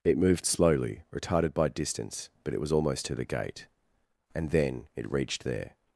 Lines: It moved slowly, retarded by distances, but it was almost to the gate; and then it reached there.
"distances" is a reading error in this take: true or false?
true